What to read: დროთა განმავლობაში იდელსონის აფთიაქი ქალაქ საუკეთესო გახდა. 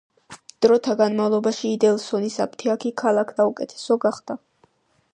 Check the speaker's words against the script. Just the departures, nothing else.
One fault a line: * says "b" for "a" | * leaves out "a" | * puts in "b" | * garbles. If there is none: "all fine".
all fine